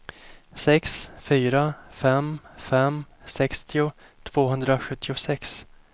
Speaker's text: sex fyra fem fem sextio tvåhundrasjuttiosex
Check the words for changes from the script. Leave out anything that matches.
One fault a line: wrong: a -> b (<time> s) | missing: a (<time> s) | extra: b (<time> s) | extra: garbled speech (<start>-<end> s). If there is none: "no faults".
no faults